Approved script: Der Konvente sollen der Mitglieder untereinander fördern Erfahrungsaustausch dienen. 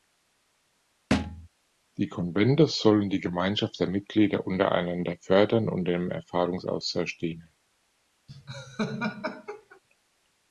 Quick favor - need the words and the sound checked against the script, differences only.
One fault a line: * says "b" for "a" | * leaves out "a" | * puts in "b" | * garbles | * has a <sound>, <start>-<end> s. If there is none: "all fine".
* has a thud, 1.1-1.5 s
* says "Die" for "Der"
* puts in "die Gemeinschaft"
* puts in "und dem"
* has a laugh, 8.3-9.8 s